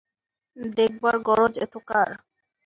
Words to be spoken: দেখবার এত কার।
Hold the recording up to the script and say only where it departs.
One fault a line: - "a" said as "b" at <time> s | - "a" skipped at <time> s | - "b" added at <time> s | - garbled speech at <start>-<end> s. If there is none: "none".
- "গরজ" added at 1.3 s